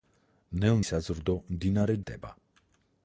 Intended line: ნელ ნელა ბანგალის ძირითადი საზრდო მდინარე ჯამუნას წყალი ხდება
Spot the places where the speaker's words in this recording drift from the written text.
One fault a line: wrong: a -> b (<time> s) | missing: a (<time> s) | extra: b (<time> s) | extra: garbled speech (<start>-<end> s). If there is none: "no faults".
missing: ნელა ბანგალის ძირითადი (0.8 s)
missing: ჯამუნას წყალი (2.0 s)